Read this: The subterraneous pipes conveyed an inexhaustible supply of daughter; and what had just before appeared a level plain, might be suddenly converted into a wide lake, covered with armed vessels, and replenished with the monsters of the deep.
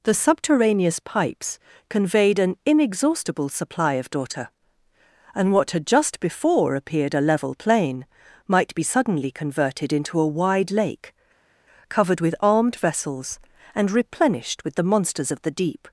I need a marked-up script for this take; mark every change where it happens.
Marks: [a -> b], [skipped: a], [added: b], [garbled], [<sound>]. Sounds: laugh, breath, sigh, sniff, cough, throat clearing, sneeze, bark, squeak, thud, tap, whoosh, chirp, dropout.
The subterraneous pipes conveyed an inexhaustible supply of daughter; and what had just before appeared a level plain, might be suddenly converted into a wide lake, covered with armed vessels, and replenished with the monsters of the deep.